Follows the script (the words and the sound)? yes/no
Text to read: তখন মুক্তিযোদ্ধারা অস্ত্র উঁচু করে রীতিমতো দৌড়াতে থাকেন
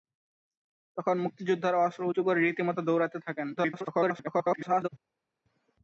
no